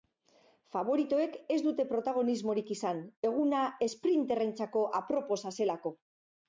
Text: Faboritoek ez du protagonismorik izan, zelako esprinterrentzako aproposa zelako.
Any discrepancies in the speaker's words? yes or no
yes